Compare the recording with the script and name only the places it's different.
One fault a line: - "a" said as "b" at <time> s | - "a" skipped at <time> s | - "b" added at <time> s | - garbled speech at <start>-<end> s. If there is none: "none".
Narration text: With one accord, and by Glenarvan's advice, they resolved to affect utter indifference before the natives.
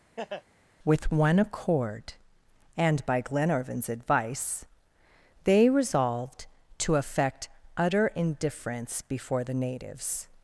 none